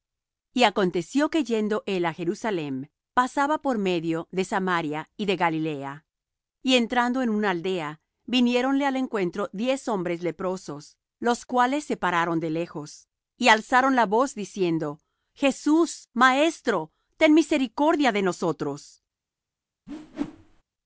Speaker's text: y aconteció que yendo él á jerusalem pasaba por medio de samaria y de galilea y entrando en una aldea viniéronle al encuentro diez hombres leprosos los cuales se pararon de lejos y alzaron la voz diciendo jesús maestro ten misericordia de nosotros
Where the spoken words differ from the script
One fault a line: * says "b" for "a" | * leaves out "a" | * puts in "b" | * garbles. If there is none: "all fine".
all fine